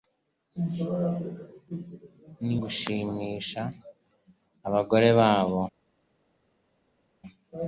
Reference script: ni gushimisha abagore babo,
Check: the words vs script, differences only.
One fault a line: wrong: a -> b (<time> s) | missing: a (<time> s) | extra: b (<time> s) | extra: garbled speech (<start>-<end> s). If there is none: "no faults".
no faults